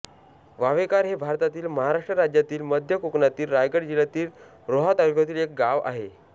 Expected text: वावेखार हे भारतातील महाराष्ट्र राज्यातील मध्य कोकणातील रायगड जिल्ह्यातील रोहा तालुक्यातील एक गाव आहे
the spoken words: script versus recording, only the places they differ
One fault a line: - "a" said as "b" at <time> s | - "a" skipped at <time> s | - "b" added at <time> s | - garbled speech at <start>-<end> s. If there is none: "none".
none